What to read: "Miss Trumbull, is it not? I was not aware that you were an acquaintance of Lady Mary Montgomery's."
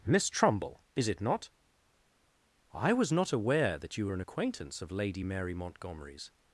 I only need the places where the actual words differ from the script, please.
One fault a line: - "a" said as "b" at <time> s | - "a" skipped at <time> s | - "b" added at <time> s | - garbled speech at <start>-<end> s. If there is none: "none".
none